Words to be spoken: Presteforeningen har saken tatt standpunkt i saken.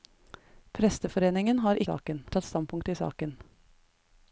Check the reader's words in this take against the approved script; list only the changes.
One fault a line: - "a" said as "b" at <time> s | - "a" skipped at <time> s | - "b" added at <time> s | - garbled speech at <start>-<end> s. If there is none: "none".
none